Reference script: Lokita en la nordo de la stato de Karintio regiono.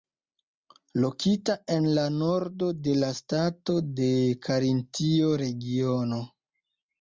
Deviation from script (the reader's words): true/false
false